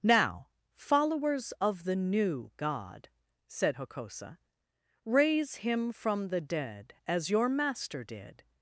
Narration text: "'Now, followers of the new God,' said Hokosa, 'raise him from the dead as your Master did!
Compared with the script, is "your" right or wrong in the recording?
right